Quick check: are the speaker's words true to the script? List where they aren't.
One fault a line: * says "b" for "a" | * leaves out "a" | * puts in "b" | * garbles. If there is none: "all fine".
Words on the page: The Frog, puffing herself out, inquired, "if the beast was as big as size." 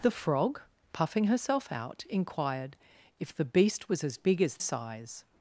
all fine